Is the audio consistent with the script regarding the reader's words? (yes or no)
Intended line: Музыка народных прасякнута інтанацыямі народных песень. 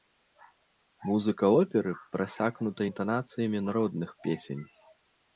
no